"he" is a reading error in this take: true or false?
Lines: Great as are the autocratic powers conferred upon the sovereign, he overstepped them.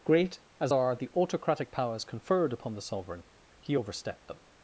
false